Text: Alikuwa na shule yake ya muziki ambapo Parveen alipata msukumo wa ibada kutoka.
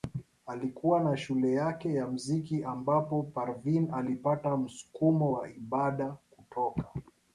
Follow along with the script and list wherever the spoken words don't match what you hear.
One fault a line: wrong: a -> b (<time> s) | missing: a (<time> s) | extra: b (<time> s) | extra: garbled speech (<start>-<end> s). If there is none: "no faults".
no faults